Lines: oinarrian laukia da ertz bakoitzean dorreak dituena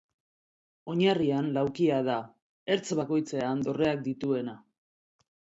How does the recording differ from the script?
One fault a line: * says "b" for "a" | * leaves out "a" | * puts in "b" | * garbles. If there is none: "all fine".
all fine